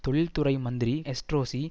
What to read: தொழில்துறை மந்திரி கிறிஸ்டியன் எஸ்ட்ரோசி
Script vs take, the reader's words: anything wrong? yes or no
yes